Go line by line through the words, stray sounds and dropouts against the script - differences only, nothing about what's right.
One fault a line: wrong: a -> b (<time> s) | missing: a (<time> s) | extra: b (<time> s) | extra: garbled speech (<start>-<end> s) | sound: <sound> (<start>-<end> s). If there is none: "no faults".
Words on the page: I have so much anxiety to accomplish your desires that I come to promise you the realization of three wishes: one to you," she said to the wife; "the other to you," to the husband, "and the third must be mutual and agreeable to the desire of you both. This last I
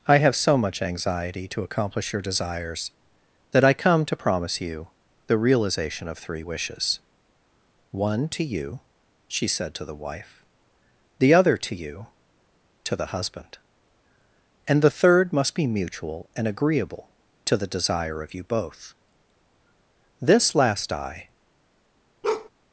sound: bark (22.2-22.5 s)